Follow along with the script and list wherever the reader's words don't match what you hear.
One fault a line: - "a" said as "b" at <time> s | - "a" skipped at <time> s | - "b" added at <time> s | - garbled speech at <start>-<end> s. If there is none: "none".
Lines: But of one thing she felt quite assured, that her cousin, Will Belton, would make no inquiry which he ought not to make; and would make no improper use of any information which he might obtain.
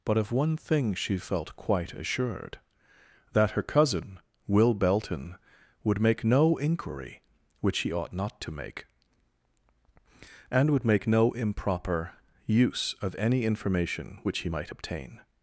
none